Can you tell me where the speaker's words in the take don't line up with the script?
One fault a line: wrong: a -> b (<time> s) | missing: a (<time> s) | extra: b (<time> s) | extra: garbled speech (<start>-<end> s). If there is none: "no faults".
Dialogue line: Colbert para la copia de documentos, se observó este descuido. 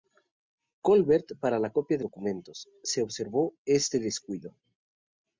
no faults